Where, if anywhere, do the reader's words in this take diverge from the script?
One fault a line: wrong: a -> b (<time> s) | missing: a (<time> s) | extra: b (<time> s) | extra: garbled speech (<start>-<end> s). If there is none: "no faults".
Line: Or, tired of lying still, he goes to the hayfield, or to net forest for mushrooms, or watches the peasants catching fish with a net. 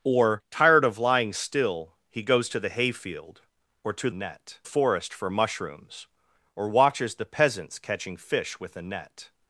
no faults